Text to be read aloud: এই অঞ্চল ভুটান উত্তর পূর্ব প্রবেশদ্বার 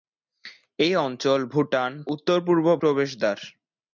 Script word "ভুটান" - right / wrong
right